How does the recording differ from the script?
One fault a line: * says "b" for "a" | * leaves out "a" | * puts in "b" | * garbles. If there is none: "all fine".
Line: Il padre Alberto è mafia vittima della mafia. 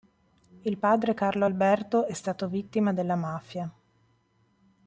* puts in "Carlo"
* says "stato" for "mafia"